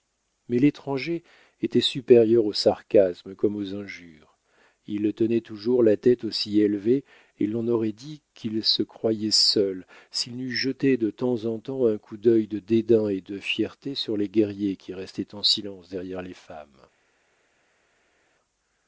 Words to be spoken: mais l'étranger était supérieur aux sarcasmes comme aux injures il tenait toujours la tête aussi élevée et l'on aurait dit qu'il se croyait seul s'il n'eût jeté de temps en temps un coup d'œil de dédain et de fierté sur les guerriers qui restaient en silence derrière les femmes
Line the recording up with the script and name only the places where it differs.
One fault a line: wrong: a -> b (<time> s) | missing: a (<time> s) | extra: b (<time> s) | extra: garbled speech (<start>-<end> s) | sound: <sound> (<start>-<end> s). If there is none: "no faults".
no faults